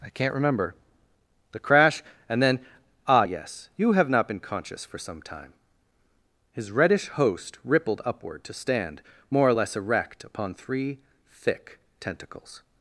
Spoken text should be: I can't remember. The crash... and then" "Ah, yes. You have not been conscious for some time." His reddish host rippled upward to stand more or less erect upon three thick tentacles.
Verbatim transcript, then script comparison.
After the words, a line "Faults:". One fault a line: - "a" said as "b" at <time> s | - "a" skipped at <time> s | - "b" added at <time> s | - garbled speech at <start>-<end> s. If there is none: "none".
I can't remember. The crash... and then" "Ah, yes. You have not been conscious for some time." His reddish host rippled upward to stand more or less erect upon three thick tentacles.
Faults:
none